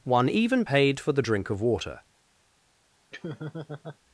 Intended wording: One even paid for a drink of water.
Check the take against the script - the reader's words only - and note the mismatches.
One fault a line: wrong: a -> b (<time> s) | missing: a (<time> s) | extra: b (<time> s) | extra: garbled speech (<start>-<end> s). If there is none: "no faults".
wrong: a -> the (1.1 s)